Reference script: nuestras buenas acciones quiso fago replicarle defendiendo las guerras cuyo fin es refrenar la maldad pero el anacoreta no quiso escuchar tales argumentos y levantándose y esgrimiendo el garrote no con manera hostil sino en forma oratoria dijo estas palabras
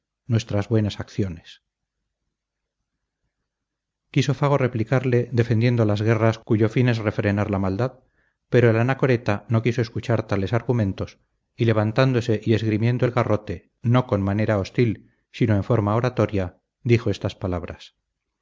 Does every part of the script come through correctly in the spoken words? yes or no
yes